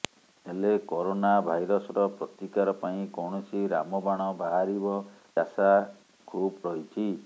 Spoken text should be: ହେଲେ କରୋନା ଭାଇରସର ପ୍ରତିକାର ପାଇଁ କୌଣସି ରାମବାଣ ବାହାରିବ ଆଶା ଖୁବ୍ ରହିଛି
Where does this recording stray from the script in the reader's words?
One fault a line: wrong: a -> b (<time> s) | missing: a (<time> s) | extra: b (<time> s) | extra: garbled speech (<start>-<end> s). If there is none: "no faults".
no faults